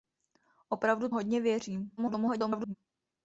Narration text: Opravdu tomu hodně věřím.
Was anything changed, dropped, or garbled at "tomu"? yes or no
yes